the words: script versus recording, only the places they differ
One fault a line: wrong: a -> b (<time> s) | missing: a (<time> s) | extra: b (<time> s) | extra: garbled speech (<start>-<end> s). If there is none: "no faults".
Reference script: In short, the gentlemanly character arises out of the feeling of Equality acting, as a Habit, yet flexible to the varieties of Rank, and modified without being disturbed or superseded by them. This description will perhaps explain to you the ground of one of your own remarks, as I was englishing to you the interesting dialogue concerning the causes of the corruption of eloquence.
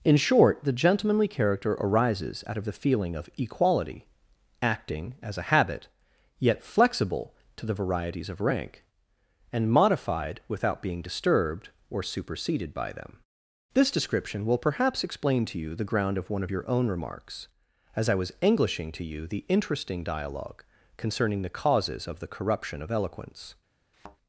no faults